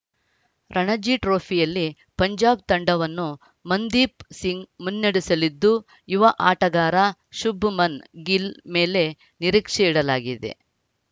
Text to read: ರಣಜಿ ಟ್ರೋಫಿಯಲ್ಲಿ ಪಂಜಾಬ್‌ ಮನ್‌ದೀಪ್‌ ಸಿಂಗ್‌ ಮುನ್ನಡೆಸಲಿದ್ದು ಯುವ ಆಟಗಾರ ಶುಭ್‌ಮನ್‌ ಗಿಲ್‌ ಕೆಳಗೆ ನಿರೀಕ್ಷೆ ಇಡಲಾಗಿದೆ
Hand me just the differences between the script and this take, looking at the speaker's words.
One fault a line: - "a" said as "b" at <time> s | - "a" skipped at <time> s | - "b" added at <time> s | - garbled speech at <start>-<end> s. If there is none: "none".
- "ತಂಡವನ್ನು" added at 2.7 s
- "ಕೆಳಗೆ" said as "ಮೇಲೆ" at 8.8 s